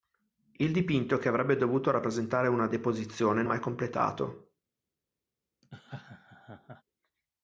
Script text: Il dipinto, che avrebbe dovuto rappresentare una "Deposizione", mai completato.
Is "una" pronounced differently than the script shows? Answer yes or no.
no